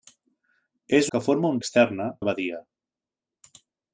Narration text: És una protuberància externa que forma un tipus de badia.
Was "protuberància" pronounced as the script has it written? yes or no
no